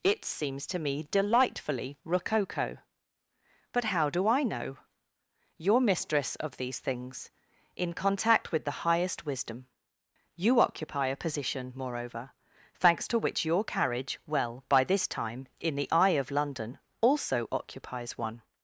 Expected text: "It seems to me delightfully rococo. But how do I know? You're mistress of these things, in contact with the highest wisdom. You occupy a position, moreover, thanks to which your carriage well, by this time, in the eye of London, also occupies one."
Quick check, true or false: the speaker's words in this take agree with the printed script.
true